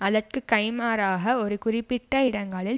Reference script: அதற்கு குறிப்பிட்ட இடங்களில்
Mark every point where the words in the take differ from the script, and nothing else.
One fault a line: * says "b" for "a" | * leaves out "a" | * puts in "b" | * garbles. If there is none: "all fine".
* puts in "கைமாறாக ஒரு"